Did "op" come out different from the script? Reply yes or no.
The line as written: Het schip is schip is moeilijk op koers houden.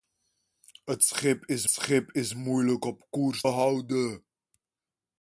no